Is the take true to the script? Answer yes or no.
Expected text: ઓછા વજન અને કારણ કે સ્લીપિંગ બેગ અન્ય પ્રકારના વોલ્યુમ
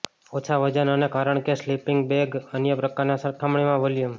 no